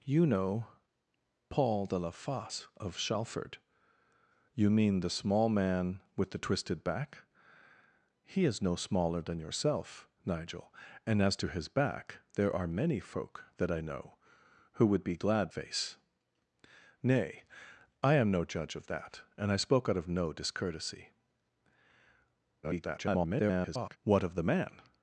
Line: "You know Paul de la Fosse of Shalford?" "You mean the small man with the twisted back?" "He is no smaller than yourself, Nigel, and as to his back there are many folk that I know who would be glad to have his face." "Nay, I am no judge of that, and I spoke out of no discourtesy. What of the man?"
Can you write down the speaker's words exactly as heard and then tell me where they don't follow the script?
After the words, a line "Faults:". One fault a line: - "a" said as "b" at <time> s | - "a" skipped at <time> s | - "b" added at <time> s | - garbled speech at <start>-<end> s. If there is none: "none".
"You know Paul de la Fosse of Shalford?" "You mean the small man with the twisted back?" "He is no smaller than yourself, Nigel, and as to his back there are many folk that I know who would be glad face." "Nay, I am no judge of that, and I spoke out of no discourtesy. [garbled] What of the man?"
Faults:
- "to have his" skipped at 15.5 s
- garbled speech at 22.6-24.0 s